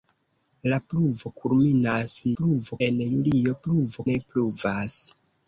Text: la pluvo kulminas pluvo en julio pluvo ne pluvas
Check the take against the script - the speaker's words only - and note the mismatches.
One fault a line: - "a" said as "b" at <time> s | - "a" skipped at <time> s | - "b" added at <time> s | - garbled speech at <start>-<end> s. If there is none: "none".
none